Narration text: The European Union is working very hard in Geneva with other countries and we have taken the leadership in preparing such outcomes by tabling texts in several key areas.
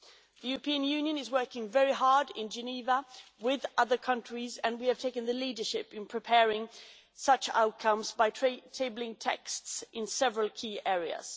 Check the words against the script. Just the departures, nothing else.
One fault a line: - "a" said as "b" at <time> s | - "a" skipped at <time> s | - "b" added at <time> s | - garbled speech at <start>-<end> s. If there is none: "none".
none